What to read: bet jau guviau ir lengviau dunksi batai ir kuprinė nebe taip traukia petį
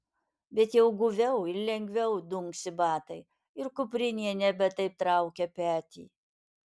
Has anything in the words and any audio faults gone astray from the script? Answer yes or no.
no